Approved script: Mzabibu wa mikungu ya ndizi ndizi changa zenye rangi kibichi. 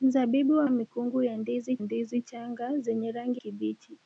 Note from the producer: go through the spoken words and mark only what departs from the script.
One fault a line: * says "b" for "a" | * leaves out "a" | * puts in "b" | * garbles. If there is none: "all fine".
all fine